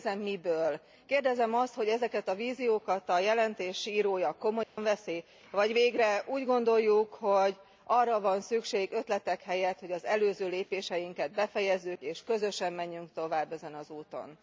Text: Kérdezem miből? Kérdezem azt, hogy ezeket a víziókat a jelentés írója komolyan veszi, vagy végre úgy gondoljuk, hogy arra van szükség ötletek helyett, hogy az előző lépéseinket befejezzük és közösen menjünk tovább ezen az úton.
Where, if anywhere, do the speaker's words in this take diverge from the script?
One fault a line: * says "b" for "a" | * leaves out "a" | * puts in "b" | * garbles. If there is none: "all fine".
all fine